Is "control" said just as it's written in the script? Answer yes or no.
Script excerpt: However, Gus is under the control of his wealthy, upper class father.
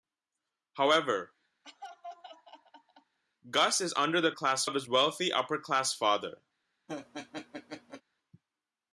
no